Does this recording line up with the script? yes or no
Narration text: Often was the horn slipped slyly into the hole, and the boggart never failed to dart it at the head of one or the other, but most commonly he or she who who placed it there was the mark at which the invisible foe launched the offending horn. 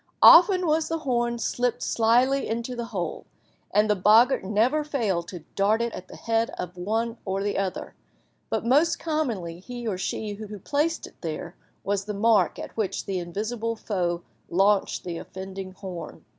yes